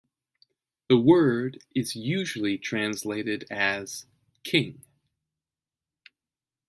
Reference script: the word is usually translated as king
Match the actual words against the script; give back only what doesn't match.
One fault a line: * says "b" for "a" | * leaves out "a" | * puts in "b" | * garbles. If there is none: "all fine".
all fine